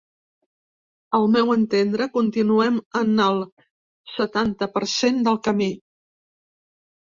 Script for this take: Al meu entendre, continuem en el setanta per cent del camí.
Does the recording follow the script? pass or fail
pass